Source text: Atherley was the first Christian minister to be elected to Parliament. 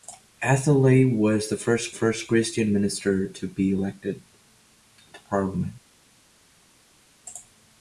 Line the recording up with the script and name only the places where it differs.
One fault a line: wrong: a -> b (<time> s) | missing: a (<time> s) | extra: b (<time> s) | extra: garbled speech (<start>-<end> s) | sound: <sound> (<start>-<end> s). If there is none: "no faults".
extra: first (1.9 s)